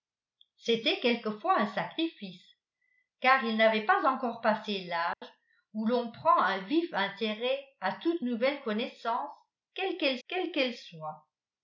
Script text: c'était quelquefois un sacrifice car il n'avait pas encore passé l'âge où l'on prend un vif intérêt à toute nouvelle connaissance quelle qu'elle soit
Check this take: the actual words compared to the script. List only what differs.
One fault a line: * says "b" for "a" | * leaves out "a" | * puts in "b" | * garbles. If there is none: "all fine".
* puts in "quelle qu'elle"